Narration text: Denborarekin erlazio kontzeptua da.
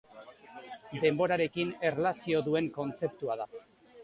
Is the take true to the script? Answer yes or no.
no